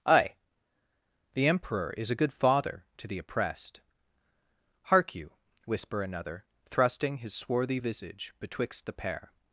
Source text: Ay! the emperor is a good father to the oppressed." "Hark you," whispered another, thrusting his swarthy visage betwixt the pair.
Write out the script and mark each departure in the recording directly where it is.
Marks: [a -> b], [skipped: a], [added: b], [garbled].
Ay! the emperor is a good father to the oppressed." "Hark you," [whispered -> whisper] another, thrusting his swarthy visage betwixt the pair.